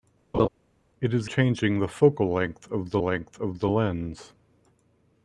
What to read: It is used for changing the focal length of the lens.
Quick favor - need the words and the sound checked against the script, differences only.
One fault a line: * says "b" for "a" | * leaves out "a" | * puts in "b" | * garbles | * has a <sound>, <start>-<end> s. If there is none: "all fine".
* has a laugh, 0.3-0.5 s
* leaves out "used for"
* puts in "length of the"